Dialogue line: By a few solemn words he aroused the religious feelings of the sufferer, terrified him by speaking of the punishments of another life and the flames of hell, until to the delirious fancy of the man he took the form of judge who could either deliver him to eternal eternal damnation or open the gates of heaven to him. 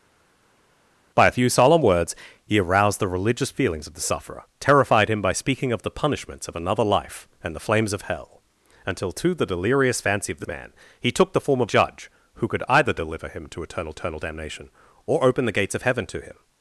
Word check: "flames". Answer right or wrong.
right